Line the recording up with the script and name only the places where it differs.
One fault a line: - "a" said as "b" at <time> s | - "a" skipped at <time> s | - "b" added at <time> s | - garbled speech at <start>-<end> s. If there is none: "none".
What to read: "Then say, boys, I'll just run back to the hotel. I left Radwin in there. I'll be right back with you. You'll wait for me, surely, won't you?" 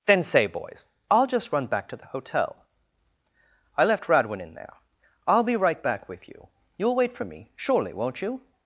none